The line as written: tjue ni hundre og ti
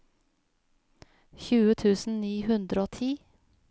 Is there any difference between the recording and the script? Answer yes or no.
yes